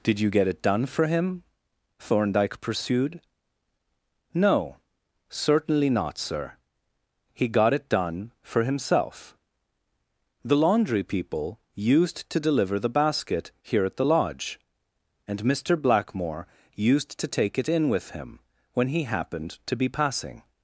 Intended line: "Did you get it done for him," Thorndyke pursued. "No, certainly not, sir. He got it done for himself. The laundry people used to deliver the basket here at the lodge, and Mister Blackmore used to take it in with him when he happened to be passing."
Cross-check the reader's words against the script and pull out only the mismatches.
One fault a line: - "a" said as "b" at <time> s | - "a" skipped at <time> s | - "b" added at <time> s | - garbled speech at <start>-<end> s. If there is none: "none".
none